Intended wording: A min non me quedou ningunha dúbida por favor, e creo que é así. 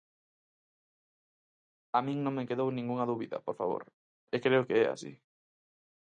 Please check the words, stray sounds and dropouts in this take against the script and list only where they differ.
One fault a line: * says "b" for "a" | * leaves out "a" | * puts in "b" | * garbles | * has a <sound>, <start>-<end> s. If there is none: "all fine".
all fine